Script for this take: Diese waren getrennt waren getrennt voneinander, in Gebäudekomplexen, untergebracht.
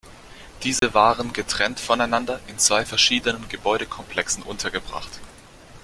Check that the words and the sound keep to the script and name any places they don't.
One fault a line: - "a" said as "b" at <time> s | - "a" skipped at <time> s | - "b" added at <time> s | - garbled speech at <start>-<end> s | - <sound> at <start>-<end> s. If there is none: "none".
- dropout at 0.8-0.8 s
- "waren getrennt voneinander in" said as "voneinander in zwei verschiedenen" at 1.8 s